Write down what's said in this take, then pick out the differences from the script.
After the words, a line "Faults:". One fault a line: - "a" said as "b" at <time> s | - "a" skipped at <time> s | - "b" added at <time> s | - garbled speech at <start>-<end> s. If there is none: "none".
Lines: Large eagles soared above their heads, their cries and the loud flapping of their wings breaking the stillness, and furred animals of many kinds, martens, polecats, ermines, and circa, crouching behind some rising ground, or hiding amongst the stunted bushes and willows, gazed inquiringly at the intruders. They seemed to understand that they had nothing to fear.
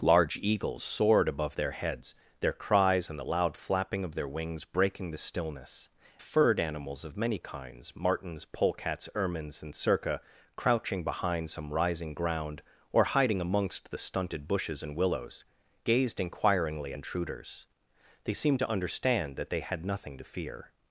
Large eagles soared above their heads, their cries and the loud flapping of their wings breaking the stillness, furred animals of many kinds, martens, polecats, ermines, and circa, crouching behind some rising ground, or hiding amongst the stunted bushes and willows, gazed inquiringly intruders. They seemed to understand that they had nothing to fear.
Faults:
- "and" skipped at 5.9 s
- "at the" skipped at 16.9 s